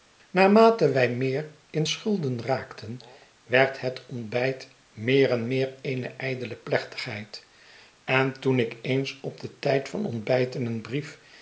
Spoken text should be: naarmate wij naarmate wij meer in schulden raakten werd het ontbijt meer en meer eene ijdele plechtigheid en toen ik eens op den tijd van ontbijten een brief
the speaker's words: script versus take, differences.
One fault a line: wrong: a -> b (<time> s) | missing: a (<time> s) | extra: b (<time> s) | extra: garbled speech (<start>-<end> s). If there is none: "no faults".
missing: naarmate wij (1.1 s)